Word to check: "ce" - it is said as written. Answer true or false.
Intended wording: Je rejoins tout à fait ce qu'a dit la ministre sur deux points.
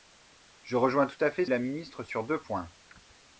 false